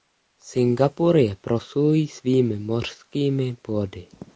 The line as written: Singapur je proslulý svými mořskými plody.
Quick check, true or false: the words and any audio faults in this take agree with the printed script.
true